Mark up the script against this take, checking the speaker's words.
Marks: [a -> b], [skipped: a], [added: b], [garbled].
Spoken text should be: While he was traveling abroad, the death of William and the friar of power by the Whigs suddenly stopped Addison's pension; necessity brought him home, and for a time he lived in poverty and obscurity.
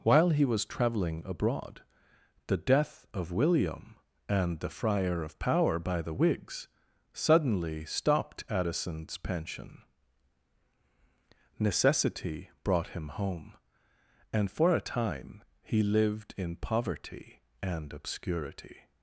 While he was traveling abroad, the death of William and the friar of power by the Whigs suddenly stopped Addison's pension; necessity brought him home, and for a time he lived in poverty and obscurity.